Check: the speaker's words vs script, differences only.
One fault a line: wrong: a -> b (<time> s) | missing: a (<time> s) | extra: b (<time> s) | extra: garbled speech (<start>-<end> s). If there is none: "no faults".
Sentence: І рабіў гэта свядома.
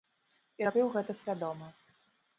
no faults